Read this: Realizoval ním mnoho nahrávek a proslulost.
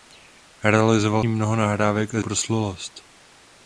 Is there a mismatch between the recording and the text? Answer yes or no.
no